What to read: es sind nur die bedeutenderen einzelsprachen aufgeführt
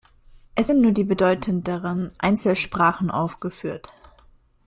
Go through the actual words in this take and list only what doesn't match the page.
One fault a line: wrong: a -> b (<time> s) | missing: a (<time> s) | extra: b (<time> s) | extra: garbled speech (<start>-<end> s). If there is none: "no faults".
no faults